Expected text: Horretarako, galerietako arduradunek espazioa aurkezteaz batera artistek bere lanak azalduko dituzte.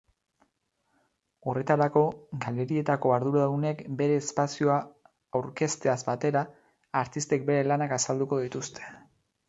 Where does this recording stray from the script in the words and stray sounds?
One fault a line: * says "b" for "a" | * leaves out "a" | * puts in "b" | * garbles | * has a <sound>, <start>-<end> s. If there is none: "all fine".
* puts in "bere"